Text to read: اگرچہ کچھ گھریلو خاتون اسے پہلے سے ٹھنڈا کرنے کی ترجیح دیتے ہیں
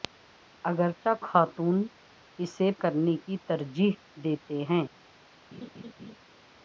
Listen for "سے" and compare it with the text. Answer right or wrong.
wrong